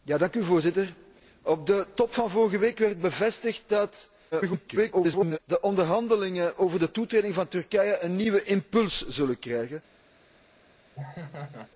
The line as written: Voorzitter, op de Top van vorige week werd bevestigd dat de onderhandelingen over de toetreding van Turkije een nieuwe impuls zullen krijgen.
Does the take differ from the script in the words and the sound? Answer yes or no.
yes